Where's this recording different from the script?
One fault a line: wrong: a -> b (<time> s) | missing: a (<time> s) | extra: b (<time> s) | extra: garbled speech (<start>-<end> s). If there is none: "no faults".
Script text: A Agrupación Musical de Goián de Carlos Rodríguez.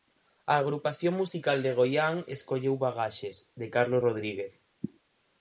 extra: escolleu Bagaxes (2.4 s)